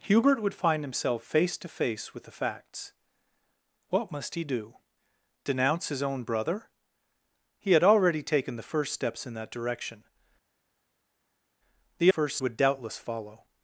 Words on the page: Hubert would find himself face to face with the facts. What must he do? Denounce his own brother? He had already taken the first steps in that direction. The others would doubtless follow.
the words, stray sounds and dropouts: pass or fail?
fail